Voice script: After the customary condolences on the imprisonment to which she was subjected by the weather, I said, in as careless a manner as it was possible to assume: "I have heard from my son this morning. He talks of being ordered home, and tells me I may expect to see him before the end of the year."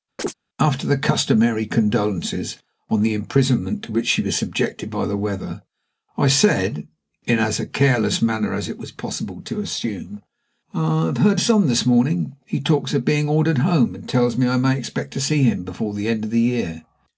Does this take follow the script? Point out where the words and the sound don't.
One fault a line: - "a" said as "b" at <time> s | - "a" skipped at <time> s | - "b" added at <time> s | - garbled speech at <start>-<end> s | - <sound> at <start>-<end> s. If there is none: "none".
- chirp at 0.2-0.3 s
- "from my" skipped at 11.4 s